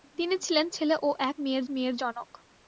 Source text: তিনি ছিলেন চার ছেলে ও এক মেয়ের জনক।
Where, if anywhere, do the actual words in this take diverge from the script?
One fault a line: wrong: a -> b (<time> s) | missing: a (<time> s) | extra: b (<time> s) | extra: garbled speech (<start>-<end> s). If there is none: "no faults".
missing: চার (0.7 s)
extra: মেয়ের (1.7 s)